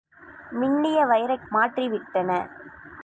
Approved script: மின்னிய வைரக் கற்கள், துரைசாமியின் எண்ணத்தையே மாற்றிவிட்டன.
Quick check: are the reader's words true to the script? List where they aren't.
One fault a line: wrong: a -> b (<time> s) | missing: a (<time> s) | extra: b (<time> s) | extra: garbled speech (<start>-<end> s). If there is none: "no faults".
missing: கற்கள் துரைசாமியின் எண்ணத்தையே (1.4 s)